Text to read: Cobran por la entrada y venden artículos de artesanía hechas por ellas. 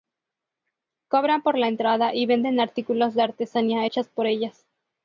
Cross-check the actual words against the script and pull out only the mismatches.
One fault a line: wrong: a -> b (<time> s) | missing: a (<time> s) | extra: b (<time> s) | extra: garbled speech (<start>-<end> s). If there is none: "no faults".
no faults